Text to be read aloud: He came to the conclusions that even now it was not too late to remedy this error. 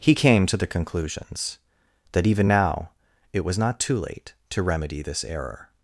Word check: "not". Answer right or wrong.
right